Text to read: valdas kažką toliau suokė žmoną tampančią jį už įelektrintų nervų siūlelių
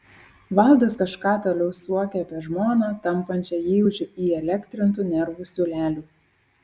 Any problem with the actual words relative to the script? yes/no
yes